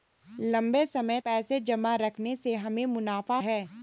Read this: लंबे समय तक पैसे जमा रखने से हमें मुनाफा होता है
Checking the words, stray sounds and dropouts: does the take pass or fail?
fail